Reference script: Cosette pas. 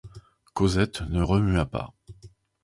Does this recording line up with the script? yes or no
no